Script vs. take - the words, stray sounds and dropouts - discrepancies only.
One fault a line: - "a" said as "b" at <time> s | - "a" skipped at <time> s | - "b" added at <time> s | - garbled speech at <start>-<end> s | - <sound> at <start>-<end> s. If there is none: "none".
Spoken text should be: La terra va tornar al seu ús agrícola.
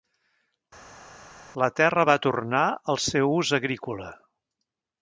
none